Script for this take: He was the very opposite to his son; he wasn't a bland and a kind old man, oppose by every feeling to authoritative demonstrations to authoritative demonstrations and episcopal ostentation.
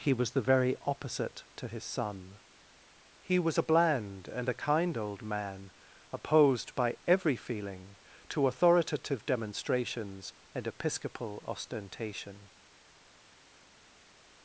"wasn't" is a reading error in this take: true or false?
true